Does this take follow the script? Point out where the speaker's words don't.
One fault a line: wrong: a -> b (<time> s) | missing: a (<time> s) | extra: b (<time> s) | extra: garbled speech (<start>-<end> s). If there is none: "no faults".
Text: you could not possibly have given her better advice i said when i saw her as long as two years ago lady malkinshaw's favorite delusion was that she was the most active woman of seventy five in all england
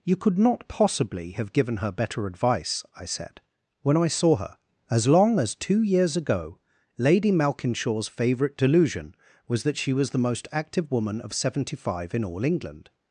no faults